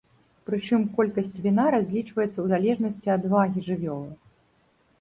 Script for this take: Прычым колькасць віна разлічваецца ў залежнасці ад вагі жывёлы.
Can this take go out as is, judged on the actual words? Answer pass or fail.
pass